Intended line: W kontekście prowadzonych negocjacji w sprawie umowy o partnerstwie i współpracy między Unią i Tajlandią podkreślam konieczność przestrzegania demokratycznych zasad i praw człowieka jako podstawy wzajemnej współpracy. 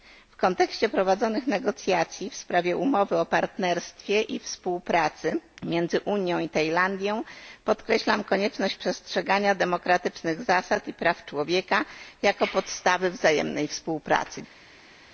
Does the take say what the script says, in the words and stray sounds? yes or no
yes